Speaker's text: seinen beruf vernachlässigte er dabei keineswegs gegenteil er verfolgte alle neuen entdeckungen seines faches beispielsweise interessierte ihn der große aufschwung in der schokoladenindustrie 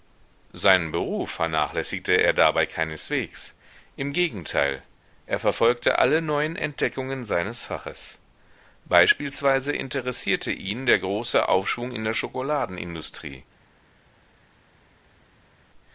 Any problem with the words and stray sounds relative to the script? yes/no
yes